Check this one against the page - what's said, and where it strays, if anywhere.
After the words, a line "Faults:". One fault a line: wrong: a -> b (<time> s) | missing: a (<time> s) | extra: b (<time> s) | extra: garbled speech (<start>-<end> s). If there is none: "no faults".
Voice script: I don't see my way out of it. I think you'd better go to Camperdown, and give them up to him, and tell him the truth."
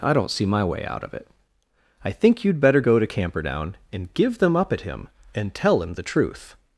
I don't see my way out of it. I think you'd better go to Camperdown, and give them up at him, and tell him the truth."
Faults:
wrong: to -> at (4.7 s)